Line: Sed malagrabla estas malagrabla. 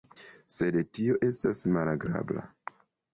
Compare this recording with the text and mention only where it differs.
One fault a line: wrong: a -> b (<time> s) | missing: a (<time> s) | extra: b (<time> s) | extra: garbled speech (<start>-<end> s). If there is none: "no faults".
wrong: malagrabla -> tio (1.0 s)